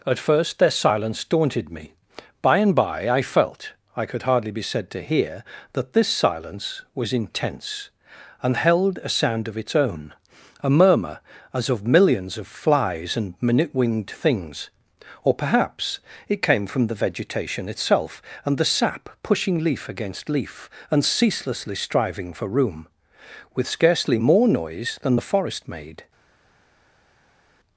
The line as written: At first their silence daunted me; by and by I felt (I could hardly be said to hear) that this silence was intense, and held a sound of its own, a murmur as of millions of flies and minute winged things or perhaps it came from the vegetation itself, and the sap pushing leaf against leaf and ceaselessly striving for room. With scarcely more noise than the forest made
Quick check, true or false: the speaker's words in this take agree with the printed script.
true